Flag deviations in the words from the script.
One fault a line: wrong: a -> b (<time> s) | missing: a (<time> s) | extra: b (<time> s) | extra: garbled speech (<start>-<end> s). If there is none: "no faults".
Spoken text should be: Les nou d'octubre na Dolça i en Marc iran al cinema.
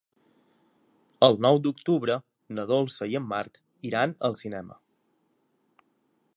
wrong: Les -> El (1.3 s)